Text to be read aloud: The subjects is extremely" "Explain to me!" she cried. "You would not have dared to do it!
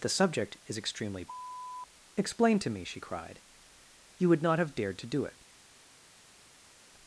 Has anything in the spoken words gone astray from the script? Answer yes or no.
yes